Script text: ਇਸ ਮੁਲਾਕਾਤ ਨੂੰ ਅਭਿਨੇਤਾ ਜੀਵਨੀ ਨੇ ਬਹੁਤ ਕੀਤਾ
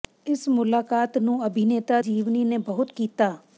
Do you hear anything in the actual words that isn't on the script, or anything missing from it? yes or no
no